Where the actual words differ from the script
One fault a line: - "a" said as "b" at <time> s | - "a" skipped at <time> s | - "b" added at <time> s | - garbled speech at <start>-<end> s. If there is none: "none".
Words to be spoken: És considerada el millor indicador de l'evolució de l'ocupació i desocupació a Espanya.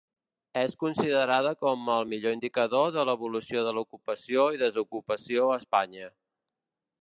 - "com" added at 1.6 s